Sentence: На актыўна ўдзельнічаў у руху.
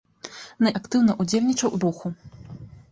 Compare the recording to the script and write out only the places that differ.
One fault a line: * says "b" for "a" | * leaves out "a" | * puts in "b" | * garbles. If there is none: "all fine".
all fine